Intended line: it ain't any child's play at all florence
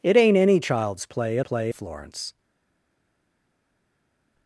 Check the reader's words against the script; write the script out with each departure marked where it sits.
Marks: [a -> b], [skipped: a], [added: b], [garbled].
it ain't any child's play at [all -> play] florence